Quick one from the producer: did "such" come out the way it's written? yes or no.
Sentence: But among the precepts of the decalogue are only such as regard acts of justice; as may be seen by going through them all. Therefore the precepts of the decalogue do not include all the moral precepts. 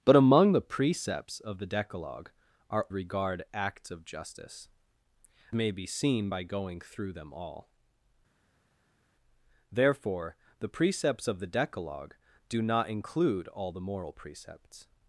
no